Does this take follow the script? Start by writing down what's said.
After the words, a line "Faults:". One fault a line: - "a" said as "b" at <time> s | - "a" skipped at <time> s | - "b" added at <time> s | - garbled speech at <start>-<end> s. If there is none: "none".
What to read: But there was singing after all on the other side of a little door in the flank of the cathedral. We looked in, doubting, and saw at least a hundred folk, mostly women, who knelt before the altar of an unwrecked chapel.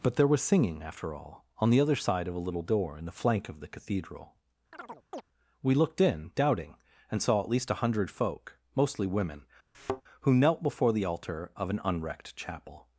But there was singing after all on the other side of a little door in the flank of the cathedral. We looked in, doubting, and saw at least a hundred folk, mostly women, who knelt before the altar of an unwrecked chapel.
Faults:
none